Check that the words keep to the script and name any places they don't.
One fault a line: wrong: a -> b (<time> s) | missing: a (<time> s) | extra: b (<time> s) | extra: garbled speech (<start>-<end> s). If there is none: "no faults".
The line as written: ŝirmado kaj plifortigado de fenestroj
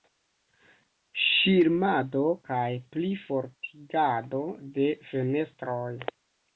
no faults